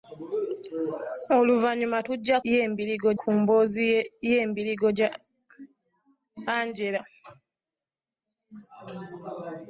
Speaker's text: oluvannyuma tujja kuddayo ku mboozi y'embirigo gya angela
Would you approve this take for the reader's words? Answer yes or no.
no